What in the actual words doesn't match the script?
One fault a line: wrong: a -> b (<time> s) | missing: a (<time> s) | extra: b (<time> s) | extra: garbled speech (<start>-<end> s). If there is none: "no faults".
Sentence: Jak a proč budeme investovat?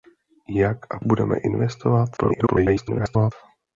missing: proč (1.0 s)
extra: garbled speech (2.2-3.3 s)